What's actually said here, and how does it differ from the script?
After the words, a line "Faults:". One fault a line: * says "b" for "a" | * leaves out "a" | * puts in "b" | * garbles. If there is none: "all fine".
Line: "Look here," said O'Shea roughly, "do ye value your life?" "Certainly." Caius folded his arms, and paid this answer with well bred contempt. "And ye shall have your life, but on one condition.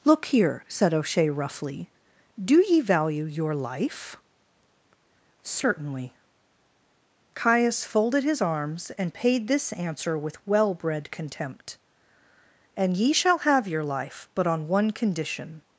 "Look here," said O'Shea roughly, "do ye value your life?" "Certainly." Caius folded his arms, and paid this answer with well bred contempt. "And ye shall have your life, but on one condition.
Faults:
all fine